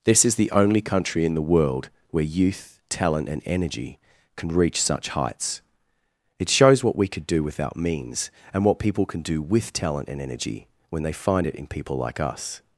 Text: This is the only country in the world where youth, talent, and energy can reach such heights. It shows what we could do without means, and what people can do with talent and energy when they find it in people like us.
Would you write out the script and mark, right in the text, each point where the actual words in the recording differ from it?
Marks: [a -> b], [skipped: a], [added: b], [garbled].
This is the only country in the world where youth, talent, and energy can reach such heights. It shows what we could do without means, and what people can do with talent and energy when they find it in people like us.